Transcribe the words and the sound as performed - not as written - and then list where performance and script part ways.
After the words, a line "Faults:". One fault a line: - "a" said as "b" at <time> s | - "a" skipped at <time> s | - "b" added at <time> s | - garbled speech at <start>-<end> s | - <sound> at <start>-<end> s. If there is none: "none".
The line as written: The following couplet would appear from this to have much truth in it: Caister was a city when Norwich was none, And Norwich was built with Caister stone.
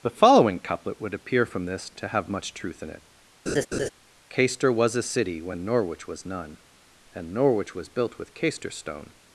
The following couplet would appear from this to have much truth in it: Caister was a city when Norwich was none, And Norwich was built with Caister stone.
Faults:
- laugh at 3.5-3.9 s